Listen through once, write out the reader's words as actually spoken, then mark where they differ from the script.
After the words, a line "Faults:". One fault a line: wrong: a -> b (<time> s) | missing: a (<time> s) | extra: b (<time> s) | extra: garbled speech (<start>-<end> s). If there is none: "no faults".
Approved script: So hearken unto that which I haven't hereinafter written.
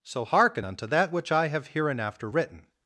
So hearken unto that which I have hereinafter written.
Faults:
wrong: haven't -> have (1.5 s)